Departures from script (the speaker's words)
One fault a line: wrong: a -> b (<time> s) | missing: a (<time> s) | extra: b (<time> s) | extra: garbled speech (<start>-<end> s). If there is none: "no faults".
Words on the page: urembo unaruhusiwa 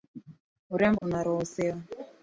no faults